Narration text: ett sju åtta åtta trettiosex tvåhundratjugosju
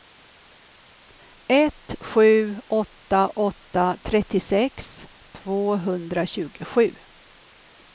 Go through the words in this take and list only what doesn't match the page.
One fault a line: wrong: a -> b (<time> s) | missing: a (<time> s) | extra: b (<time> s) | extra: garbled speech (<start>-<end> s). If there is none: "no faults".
no faults